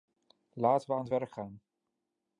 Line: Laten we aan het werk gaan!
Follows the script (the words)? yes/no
yes